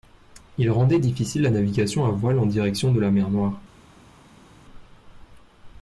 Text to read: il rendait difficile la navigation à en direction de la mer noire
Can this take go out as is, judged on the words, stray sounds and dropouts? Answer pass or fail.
fail